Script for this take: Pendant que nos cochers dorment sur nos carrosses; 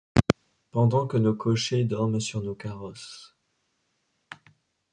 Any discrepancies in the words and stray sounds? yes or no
no